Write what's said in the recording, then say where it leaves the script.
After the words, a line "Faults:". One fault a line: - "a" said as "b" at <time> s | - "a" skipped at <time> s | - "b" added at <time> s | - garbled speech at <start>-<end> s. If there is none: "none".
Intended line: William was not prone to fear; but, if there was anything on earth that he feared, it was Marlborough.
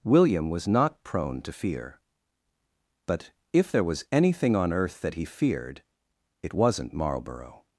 William was not prone to fear; but, if there was anything on earth that he feared, it wasn't Marlborough.
Faults:
- "was" said as "wasn't" at 6.5 s